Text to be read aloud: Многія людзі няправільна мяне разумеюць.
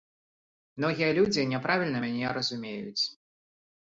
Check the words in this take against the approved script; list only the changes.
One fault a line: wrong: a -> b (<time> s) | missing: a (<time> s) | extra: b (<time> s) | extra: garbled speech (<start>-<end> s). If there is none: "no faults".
no faults